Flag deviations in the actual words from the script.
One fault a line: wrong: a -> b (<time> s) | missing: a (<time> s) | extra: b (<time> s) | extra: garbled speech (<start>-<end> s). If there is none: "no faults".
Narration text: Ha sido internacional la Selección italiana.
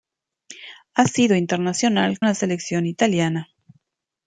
no faults